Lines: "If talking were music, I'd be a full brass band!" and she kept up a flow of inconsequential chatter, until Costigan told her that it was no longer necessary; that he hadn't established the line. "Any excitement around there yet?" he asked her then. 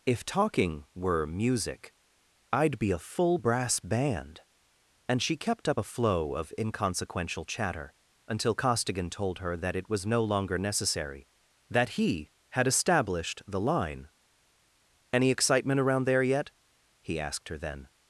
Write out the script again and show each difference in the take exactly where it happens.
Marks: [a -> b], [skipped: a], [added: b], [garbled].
"If talking were music, I'd be a full brass band!" and she kept up a flow of inconsequential chatter, until Costigan told her that it was no longer necessary; that he [hadn't -> had] established the line. "Any excitement around there yet?" he asked her then.